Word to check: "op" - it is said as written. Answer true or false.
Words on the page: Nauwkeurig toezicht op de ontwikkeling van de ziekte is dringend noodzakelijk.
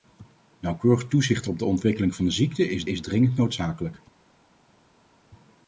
true